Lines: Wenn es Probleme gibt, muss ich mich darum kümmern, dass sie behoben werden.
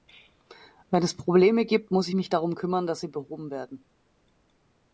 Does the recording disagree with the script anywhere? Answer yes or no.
no